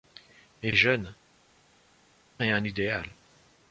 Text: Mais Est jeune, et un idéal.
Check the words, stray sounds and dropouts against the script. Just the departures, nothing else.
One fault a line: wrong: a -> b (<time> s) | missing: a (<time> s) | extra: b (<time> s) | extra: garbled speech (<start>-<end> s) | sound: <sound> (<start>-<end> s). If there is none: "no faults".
no faults